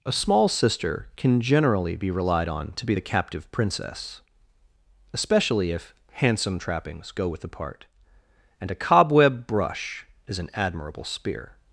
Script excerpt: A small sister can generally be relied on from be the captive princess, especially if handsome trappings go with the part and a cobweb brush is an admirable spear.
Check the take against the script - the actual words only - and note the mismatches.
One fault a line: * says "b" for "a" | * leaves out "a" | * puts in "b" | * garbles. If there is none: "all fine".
* says "to" for "from"